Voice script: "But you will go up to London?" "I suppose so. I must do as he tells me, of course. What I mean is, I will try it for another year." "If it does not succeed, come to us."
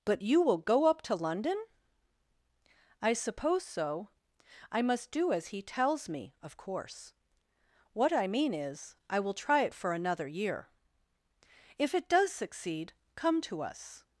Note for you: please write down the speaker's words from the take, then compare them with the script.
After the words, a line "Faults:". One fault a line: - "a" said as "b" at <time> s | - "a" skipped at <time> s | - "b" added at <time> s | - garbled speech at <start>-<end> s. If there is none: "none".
"But you will go up to London?" "I suppose so. I must do as he tells me, of course. What I mean is, I will try it for another year." "If it does succeed, come to us."
Faults:
- "not" skipped at 12.3 s